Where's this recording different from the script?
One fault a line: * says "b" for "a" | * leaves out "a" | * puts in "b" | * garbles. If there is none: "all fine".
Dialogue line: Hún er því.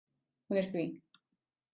all fine